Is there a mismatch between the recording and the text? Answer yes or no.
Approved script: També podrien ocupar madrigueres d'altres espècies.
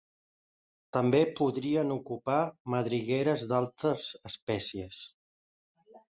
no